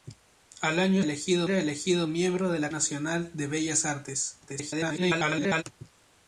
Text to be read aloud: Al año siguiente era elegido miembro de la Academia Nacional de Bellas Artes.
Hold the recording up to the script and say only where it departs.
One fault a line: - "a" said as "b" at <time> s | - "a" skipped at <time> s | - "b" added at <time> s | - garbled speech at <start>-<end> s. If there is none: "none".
- "siguiente" said as "elegido" at 1.0 s
- "Academia" skipped at 2.7 s
- garbled speech at 4.5-5.6 s